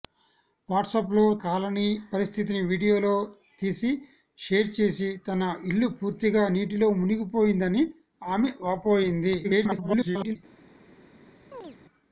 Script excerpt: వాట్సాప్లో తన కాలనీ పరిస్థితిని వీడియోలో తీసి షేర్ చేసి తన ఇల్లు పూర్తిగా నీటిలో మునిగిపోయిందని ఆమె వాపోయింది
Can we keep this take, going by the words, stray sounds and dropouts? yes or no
no